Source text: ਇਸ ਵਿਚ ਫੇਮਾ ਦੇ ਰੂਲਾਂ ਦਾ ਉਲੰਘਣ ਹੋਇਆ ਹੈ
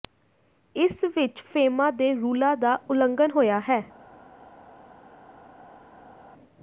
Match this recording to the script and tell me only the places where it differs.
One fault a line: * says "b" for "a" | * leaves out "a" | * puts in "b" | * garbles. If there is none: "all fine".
all fine